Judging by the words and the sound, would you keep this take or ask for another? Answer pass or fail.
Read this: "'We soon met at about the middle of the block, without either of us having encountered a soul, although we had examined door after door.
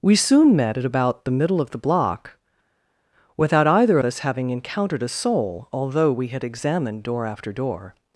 fail